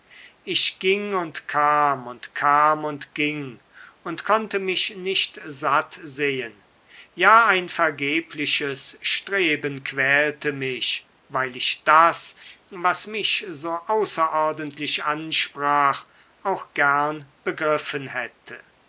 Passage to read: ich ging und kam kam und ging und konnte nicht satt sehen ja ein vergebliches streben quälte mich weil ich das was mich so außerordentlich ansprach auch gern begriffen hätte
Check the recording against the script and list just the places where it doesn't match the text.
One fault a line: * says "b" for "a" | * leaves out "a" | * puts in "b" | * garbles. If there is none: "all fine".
* puts in "und"
* puts in "mich"